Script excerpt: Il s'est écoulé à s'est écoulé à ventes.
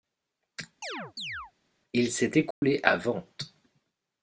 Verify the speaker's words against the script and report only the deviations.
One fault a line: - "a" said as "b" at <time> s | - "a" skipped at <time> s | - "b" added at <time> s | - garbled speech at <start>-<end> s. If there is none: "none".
- "s'est écoulé à" skipped at 3.0 s